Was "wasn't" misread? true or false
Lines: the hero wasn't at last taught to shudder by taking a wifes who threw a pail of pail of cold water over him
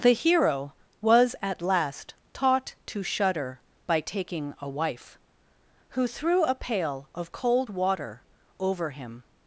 true